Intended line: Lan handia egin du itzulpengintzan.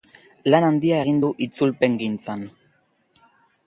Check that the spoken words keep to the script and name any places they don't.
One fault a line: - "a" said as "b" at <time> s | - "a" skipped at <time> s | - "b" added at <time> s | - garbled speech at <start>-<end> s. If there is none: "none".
none